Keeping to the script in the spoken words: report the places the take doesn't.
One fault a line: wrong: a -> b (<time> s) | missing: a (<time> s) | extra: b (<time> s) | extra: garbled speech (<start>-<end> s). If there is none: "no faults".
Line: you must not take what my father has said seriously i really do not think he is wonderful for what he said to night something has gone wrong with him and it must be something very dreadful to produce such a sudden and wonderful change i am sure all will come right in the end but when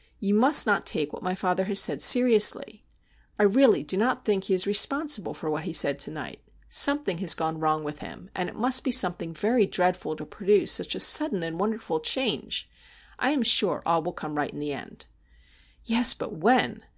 wrong: wonderful -> responsible (4.6 s)
extra: yes (15.8 s)